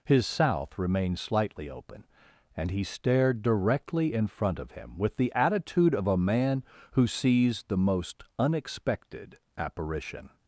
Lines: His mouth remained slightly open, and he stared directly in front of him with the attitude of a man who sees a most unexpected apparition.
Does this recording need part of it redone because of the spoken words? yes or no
yes